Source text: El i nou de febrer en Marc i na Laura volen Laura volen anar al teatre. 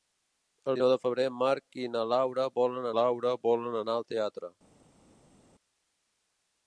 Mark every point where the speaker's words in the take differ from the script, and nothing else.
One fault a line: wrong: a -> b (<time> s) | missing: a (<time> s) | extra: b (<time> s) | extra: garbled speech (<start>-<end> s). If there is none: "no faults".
no faults